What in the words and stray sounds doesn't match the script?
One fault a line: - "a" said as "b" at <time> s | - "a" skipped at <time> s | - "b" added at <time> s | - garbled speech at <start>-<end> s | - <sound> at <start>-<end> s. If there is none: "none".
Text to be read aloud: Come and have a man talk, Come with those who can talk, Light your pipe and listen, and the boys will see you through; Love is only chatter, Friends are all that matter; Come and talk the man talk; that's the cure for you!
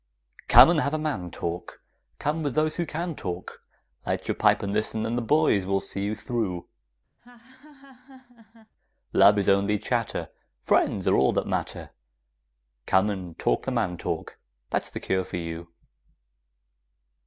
- laugh at 7.2-8.7 s